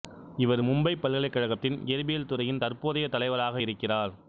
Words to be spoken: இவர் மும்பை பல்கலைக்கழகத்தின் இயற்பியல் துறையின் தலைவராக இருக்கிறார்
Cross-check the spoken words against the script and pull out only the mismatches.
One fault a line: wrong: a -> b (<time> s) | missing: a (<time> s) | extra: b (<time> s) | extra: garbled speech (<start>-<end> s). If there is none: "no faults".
extra: தற்போதைய (2.6 s)